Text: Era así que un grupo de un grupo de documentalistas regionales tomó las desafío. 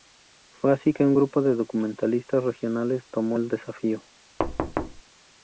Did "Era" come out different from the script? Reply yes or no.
yes